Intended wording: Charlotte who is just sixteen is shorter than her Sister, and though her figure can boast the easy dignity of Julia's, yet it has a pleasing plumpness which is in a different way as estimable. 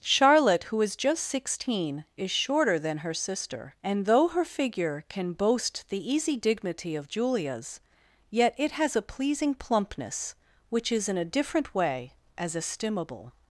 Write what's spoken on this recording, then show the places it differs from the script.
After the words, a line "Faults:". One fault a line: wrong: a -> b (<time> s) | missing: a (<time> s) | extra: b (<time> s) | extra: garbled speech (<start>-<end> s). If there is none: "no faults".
Charlotte who is just sixteen is shorter than her Sister, and though her figure can boast the easy dignity of Julia's, yet it has a pleasing plumpness which is in a different way as estimable.
Faults:
no faults